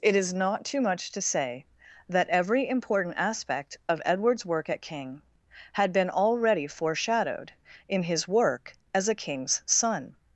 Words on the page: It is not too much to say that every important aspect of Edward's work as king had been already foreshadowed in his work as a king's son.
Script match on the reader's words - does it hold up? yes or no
no